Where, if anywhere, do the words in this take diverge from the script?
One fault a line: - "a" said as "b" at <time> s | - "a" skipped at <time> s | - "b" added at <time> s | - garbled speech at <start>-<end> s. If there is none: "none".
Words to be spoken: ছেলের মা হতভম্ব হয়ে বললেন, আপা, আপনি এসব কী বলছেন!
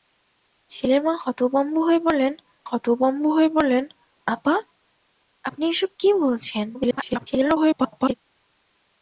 - "হতভম্ব হয়ে বললেন" added at 2.7 s
- garbled speech at 6.7-8.1 s